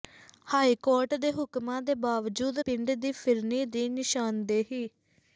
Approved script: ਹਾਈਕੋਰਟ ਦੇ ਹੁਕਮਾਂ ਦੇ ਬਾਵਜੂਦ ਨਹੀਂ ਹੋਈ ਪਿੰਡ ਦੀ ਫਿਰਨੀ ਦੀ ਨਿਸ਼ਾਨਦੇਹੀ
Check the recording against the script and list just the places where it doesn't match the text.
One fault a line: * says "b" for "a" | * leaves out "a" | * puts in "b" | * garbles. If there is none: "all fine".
* leaves out "ਨਹੀਂ ਹੋਈ"